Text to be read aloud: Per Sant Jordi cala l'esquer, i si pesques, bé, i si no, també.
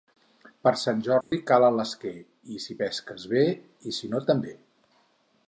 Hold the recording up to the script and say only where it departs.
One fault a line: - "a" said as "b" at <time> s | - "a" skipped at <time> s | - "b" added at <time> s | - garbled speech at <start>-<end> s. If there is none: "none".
none